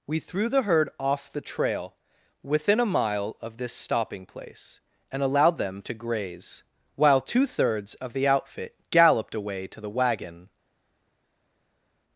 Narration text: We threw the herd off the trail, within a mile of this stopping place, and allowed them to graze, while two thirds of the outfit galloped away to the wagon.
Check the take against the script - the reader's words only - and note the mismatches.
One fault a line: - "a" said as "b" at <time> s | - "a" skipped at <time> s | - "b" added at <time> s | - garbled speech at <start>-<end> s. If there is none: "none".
none